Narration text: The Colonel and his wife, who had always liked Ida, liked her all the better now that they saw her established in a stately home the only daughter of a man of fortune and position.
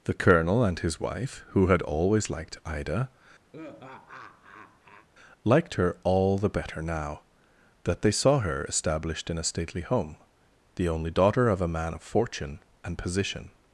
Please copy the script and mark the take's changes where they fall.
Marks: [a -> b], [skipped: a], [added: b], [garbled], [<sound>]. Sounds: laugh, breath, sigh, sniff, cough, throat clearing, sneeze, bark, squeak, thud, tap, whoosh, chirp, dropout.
The Colonel and his wife, who had always liked Ida, [laugh] liked her all the better now that they saw her established in a stately home the only daughter of a man of fortune and position.